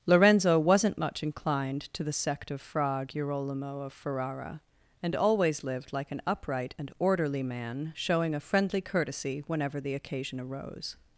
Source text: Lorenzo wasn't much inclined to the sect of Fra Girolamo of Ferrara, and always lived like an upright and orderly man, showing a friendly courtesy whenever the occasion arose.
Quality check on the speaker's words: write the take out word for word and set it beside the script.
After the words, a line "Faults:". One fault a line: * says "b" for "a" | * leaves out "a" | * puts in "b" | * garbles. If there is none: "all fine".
Lorenzo wasn't much inclined to the sect of Fra Girolamo of Ferrara, and always lived like an upright and orderly man, showing a friendly courtesy whenever the occasion arose.
Faults:
all fine